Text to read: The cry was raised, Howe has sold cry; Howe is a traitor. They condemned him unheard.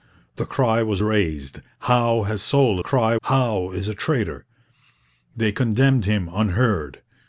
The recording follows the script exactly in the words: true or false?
true